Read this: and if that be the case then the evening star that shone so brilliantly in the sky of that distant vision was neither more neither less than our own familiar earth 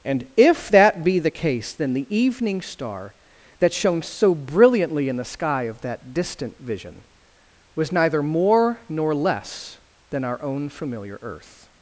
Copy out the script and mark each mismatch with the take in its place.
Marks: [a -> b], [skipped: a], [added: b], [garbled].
and if that be the case then the evening star that shone so brilliantly in the sky of that distant vision was neither more [neither -> nor] less than our own familiar earth